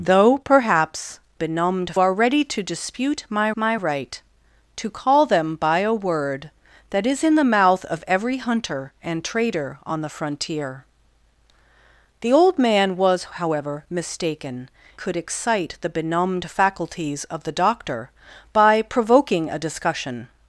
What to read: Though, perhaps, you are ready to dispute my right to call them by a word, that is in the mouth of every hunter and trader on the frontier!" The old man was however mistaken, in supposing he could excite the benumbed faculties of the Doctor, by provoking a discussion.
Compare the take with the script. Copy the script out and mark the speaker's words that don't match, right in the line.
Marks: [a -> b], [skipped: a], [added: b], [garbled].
Though, perhaps, [you -> benumbed] are ready to dispute my [added: my] right to call them by a word, that is in the mouth of every hunter and trader on the frontier!" The old man was however mistaken, [skipped: in supposing he] could excite the benumbed faculties of the Doctor, by provoking a discussion.